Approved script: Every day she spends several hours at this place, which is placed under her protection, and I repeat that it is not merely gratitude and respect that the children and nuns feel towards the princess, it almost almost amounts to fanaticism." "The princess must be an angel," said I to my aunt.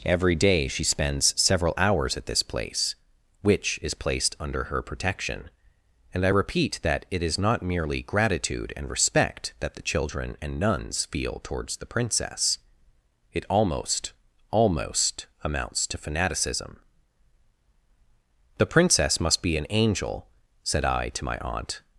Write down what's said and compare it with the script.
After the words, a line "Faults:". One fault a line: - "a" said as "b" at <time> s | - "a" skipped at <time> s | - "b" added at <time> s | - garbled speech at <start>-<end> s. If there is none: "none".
Every day she spends several hours at this place, which is placed under her protection, and I repeat that it is not merely gratitude and respect that the children and nuns feel towards the princess, it almost almost amounts to fanaticism." "The princess must be an angel," said I to my aunt.
Faults:
none